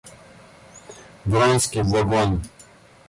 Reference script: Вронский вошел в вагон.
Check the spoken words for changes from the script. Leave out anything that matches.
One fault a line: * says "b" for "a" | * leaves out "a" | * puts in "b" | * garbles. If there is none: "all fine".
* leaves out "вошел"